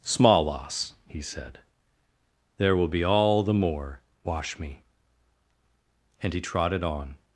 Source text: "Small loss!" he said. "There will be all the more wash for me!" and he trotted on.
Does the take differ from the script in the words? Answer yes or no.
yes